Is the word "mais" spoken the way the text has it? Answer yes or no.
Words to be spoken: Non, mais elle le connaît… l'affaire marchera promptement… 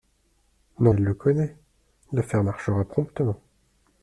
no